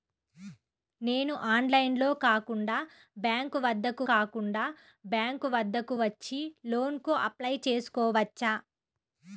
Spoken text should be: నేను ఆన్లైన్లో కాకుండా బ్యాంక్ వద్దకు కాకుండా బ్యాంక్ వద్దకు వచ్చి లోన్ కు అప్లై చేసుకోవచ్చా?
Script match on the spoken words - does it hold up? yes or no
yes